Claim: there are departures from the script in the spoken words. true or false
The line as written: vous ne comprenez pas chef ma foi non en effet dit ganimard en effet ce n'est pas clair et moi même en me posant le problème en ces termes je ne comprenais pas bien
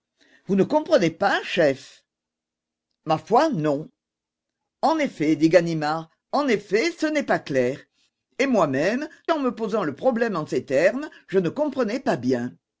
false